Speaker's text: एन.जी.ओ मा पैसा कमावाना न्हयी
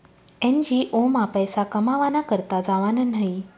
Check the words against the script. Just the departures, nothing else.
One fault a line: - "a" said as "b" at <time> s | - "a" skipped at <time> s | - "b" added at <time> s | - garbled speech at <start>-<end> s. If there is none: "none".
- "करता जावानं" added at 2.3 s